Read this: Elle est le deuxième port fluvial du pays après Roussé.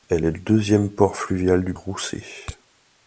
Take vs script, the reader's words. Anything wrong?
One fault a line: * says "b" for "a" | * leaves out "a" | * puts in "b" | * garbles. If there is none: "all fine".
* leaves out "le"
* leaves out "pays après"